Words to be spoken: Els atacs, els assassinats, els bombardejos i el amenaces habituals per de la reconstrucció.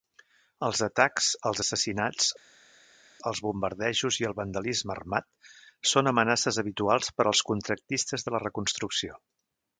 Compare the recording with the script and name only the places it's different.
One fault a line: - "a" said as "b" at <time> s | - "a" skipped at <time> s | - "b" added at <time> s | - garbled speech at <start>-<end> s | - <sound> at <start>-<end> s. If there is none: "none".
- "vandalisme armat són" added at 4.4 s
- "als contractistes" added at 7.3 s